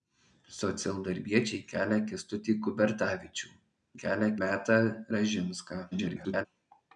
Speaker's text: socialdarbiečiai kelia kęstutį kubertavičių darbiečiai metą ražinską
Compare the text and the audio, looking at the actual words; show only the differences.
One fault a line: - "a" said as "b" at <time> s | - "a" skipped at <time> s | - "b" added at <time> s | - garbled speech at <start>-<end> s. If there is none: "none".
- "darbiečiai" said as "kelia" at 4.0 s
- garbled speech at 5.9-6.5 s